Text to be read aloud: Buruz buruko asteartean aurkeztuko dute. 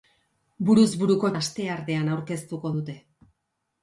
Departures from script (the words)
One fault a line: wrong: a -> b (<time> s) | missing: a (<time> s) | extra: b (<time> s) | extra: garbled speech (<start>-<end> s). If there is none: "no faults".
no faults